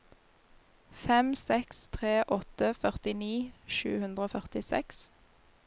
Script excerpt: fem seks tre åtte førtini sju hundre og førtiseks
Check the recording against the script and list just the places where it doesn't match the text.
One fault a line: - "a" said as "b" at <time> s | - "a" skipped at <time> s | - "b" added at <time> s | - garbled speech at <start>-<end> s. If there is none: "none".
none